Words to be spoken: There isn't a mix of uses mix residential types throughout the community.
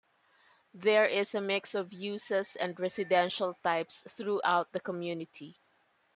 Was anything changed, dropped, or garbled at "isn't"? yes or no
yes